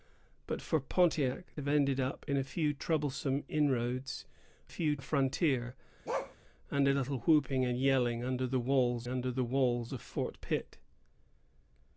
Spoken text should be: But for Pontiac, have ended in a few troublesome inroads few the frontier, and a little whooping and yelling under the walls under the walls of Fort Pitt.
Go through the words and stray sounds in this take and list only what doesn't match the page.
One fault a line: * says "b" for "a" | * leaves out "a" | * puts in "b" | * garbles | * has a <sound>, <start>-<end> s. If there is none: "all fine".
* has a bark, 6.1-6.4 s